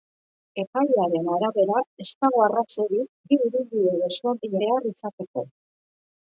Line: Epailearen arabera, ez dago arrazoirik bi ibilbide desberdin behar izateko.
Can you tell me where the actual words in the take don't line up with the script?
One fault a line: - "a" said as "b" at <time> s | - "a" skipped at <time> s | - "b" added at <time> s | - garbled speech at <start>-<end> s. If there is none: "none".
none